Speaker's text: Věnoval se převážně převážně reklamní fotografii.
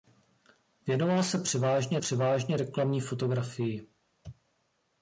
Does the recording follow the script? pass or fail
pass